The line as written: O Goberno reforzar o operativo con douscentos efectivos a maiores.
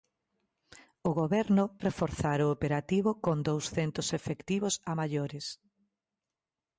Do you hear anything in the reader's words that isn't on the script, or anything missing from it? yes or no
no